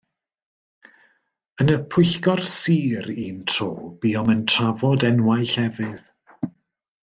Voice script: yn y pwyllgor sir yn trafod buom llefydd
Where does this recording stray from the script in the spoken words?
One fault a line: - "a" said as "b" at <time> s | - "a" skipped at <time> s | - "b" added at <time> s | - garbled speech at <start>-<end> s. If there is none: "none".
- "un tro buom" added at 3.3 s
- "buom" said as "enwau" at 5.1 s